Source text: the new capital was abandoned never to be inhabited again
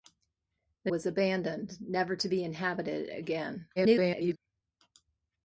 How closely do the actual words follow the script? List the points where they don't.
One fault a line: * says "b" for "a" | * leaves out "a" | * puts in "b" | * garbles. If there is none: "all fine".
* leaves out "new capital"
* garbles